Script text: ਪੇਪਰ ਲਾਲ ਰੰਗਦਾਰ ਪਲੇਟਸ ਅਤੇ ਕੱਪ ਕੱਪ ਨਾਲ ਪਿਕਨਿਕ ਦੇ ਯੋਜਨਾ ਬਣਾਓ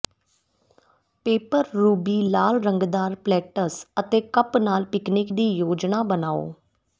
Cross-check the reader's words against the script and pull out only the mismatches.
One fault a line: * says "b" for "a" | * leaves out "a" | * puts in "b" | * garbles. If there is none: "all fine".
* puts in "ਰੂਬੀ"
* leaves out "ਕੱਪ"
* says "ਦੀ" for "ਦੇ"